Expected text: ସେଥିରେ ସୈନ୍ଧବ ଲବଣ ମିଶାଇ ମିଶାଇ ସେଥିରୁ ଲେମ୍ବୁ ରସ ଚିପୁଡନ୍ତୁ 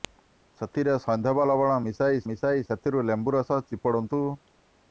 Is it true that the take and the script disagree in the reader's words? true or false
false